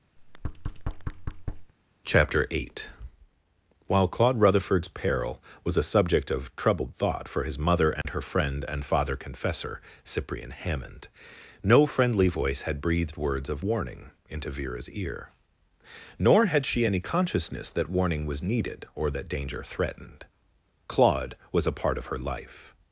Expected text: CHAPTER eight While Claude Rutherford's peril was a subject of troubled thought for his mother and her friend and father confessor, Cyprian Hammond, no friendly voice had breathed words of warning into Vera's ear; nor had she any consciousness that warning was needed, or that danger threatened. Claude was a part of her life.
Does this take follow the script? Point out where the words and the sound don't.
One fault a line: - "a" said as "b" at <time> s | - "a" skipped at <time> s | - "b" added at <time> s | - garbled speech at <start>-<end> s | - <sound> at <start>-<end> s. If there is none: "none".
- thud at 0.2-1.7 s
- dropout at 8.0-8.1 s